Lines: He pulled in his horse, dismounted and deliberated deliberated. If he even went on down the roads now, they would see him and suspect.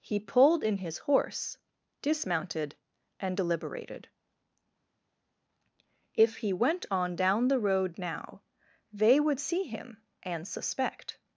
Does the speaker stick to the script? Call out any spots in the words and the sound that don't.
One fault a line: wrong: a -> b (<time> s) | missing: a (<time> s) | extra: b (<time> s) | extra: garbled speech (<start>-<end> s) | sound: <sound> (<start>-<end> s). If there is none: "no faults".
missing: deliberated (4.1 s)
missing: even (6.5 s)
wrong: roads -> road (7.6 s)